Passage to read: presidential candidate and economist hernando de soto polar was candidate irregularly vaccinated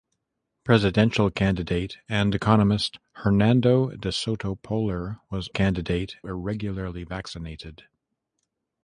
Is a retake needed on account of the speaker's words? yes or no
no